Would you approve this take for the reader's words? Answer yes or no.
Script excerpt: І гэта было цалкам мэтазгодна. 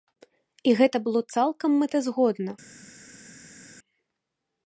yes